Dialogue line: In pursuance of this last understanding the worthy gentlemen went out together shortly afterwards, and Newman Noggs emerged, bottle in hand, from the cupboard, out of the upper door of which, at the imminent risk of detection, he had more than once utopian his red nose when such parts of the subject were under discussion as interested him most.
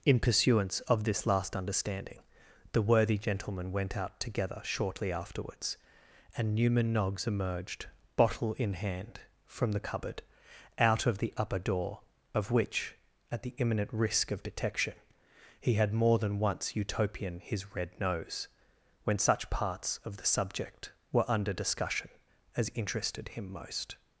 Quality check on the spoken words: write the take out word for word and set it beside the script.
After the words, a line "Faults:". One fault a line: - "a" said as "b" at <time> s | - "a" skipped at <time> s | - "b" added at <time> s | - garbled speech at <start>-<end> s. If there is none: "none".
In pursuance of this last understanding the worthy gentlemen went out together shortly afterwards, and Newman Noggs emerged, bottle in hand, from the cupboard, out of the upper door of which, at the imminent risk of detection, he had more than once utopian his red nose when such parts of the subject were under discussion as interested him most.
Faults:
none